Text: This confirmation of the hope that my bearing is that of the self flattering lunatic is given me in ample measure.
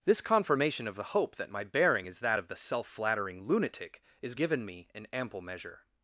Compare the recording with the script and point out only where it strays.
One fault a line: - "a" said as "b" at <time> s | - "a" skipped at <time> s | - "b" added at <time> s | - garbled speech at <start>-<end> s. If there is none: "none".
none